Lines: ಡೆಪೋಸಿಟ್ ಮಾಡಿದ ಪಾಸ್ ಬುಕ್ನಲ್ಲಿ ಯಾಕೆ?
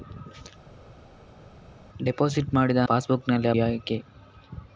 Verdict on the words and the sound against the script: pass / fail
pass